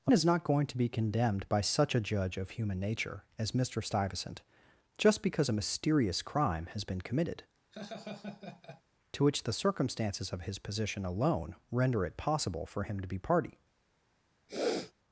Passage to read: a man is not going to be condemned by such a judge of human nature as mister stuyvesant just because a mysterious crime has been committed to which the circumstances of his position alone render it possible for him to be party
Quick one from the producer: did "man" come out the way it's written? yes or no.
no